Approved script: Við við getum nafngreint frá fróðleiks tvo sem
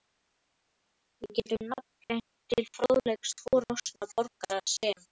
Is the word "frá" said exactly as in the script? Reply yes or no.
no